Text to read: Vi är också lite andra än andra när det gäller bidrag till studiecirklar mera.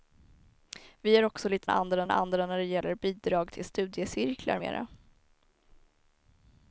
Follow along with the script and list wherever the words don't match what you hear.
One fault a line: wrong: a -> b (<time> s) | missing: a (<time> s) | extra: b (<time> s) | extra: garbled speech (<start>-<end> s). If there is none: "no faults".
no faults